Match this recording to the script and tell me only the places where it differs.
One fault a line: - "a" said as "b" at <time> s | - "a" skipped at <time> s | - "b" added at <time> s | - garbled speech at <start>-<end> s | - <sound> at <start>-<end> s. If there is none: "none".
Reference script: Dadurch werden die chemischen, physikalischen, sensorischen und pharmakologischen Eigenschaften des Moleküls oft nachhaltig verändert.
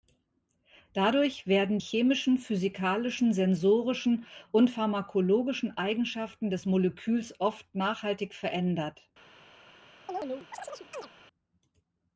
- "die" skipped at 1.8 s
- chirp at 10.1-11.1 s